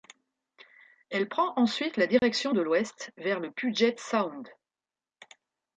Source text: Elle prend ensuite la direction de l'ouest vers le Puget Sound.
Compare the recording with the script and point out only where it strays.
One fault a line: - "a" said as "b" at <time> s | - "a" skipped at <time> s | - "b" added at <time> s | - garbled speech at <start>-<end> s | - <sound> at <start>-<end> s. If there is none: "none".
- dropout at 2.2-2.2 s